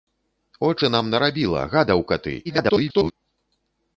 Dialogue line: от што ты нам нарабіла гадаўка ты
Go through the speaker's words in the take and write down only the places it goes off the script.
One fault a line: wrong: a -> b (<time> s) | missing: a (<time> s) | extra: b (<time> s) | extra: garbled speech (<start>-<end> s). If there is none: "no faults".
missing: што (0.8 s)
extra: garbled speech (2.4-3.1 s)